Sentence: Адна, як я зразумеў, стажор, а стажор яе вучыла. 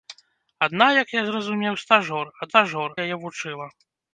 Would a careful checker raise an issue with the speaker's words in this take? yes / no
no